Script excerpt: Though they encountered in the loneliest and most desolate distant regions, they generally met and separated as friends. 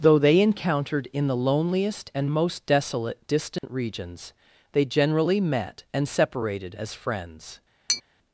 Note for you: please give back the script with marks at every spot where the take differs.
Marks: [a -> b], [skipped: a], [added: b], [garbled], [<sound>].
Though they encountered in the loneliest and most desolate distant [dropout] regions, they generally met and separated as friends. [tap]